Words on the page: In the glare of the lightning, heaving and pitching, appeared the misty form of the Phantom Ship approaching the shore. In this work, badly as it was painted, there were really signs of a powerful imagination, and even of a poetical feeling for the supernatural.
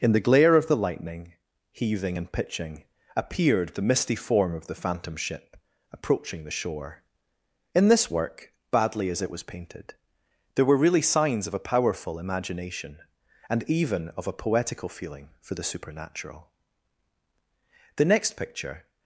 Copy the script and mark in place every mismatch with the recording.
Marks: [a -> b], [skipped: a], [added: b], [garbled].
In the glare of the lightning, heaving and pitching, appeared the misty form of the Phantom Ship approaching the shore. In this work, badly as it was painted, there were really signs of a powerful imagination, and even of a poetical feeling for the supernatural. [added: The next picture]